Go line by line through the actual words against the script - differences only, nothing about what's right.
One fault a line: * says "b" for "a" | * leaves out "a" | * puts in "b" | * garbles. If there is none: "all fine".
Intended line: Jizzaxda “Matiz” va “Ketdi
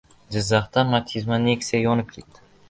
* puts in "Nexia yonib"